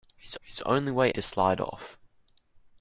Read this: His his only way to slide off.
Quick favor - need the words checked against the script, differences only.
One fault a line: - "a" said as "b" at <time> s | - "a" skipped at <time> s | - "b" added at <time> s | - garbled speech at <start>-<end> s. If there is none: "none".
none